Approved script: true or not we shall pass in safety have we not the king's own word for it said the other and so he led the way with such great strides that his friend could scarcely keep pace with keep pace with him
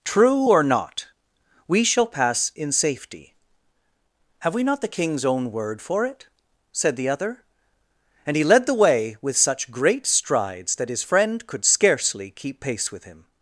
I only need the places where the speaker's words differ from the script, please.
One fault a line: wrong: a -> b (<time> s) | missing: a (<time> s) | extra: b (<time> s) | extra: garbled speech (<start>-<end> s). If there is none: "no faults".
missing: so (8.4 s)
missing: keep pace with (13.0 s)